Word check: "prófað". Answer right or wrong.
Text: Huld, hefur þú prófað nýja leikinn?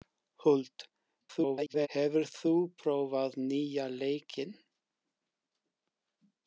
right